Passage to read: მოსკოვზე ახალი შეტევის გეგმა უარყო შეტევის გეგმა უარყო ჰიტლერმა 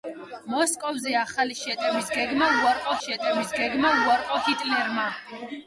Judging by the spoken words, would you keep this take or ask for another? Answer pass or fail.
pass